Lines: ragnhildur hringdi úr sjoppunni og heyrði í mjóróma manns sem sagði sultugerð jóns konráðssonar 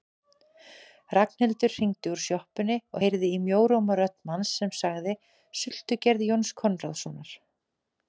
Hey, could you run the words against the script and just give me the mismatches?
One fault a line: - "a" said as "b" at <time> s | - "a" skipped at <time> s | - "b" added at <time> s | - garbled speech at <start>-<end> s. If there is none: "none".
- "rödd" added at 4.0 s